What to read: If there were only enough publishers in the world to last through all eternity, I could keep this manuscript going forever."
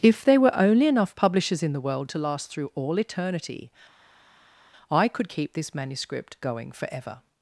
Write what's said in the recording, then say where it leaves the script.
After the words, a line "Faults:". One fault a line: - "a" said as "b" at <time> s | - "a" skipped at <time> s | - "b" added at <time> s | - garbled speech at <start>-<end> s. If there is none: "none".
If there were only enough publishers in the world to last through all eternity, I could keep this manuscript going forever."
Faults:
none